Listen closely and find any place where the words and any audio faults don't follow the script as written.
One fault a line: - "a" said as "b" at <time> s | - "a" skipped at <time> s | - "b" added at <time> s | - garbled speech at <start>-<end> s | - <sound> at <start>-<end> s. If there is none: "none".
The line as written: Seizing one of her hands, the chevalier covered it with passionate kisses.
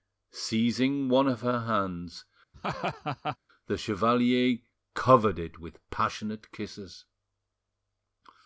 - laugh at 2.5-3.4 s